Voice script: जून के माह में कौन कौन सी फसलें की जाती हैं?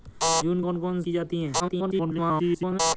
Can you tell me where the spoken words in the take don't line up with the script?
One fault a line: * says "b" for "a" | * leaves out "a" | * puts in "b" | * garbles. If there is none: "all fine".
* leaves out "के माह में"
* leaves out "सी फसलें"
* garbles